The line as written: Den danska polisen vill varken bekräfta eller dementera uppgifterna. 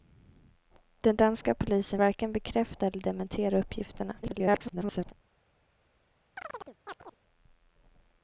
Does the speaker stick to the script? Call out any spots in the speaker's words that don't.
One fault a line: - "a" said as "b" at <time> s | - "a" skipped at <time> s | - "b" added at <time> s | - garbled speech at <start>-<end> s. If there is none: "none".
- "vill" skipped at 2.0 s
- garbled speech at 4.2-5.1 s